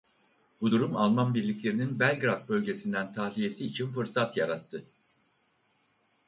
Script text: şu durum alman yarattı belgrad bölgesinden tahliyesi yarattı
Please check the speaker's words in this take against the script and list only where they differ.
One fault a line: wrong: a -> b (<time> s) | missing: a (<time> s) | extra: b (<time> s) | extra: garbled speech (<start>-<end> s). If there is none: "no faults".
wrong: şu -> bu (0.6 s)
wrong: yarattı -> birliklerinin (1.3 s)
extra: için fırsat (3.6 s)